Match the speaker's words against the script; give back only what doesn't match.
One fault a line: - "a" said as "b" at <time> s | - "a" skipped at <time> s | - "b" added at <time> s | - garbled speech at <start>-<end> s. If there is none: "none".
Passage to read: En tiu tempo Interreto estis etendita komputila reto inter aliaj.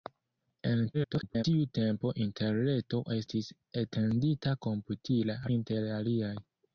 - garbled speech at 0.9-1.4 s
- "reto" skipped at 5.4 s